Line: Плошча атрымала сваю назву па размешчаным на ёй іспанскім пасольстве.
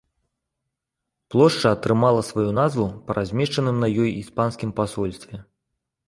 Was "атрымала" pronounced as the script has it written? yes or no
yes